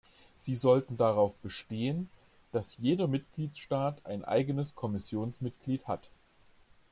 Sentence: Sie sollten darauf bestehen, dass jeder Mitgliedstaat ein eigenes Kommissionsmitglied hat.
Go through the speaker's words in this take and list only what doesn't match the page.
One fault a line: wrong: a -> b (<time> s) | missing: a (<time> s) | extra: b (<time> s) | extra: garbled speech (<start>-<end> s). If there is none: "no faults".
no faults